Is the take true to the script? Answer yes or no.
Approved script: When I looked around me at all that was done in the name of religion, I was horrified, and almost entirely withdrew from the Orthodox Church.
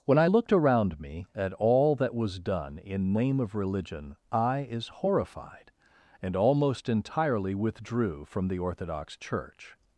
no